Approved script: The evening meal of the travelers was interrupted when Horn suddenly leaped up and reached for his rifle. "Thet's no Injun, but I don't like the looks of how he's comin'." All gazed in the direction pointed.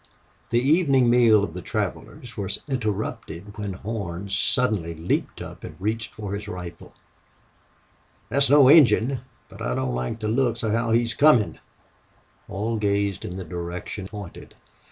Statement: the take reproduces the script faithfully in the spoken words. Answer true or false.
true